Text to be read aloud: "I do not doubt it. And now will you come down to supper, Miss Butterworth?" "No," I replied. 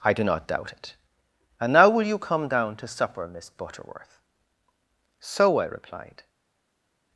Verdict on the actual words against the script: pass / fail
fail